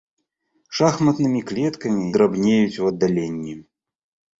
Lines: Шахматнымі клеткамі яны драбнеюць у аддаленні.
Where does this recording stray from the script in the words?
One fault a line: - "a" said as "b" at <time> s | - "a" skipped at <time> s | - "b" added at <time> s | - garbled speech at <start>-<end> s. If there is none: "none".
- "яны" skipped at 2.0 s